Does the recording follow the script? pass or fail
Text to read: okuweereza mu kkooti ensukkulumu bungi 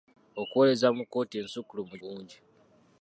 pass